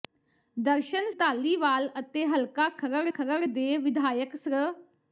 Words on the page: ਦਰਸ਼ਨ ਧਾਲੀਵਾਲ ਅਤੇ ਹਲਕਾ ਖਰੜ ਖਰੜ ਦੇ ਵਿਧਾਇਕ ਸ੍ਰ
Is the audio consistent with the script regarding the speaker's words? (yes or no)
yes